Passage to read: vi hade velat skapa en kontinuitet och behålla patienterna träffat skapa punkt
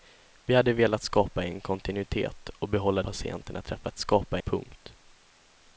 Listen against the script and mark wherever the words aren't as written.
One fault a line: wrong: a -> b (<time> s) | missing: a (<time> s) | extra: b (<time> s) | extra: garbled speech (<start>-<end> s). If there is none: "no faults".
no faults